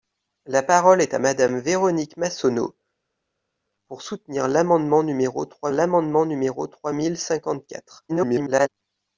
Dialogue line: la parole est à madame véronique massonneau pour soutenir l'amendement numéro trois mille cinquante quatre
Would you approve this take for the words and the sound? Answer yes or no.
no